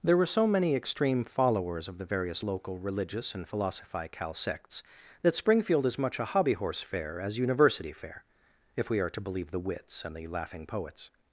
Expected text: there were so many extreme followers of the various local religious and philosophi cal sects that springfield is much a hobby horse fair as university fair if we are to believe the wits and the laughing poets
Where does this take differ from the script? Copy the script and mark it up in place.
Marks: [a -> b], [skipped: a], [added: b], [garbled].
there were so many extreme followers of the various local religious and philosophi cal sects that springfield is much a hobby horse fair as university fair if we are to believe the wits and the laughing poets